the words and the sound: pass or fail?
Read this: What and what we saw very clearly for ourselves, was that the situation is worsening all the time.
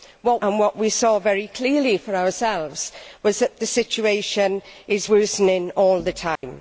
fail